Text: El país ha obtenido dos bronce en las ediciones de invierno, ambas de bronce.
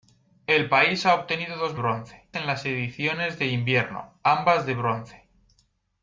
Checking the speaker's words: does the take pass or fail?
pass